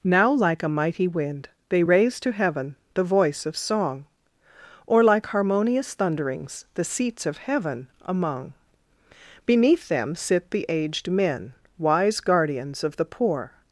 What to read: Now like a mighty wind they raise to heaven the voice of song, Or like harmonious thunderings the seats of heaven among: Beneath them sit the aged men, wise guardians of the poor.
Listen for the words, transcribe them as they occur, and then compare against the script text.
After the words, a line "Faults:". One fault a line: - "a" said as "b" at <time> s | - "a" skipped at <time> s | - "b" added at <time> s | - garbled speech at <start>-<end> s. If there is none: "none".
Now like a mighty wind they raise to heaven the voice of song, Or like harmonious thunderings the seats of heaven among: Beneath them sit the aged men, wise guardians of the poor.
Faults:
none